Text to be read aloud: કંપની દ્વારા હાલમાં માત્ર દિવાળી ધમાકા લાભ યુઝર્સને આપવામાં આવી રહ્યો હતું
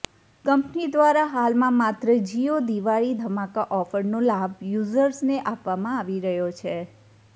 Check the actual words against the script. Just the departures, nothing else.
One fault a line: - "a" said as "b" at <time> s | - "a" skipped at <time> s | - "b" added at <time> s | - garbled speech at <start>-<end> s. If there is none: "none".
- "જિયો" added at 2.2 s
- "ઓફરનો" added at 3.8 s
- "હતું" said as "છે" at 6.6 s